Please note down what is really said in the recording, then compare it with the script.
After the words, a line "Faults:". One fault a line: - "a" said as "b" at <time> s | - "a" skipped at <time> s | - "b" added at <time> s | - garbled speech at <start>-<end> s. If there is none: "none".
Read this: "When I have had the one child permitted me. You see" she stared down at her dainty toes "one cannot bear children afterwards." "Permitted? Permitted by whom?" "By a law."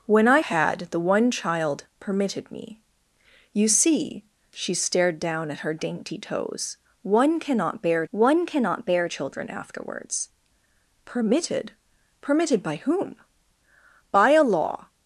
"When I had the one child permitted me. You see" she stared down at her dainty toes "one cannot bear one cannot bear children afterwards." "Permitted? Permitted by whom?" "By a law."
Faults:
- "have" skipped at 0.4 s
- "one cannot bear" added at 8.1 s